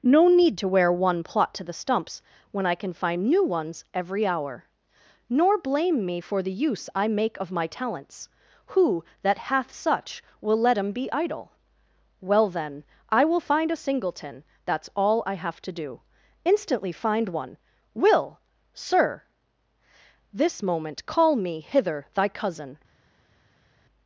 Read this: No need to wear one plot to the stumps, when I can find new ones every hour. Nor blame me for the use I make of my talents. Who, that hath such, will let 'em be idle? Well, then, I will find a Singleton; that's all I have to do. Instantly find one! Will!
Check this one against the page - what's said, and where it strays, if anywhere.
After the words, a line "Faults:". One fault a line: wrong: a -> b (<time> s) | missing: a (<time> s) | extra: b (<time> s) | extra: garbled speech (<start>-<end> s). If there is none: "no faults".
No need to wear one plot to the stumps, when I can find new ones every hour. Nor blame me for the use I make of my talents. Who, that hath such, will let 'em be idle? Well, then, I will find a Singleton; that's all I have to do. Instantly find one! Will! Sir This moment call me hither thy cousin
Faults:
extra: Sir This moment call me hither thy cousin (18.7 s)